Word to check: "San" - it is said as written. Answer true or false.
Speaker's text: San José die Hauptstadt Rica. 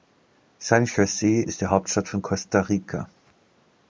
true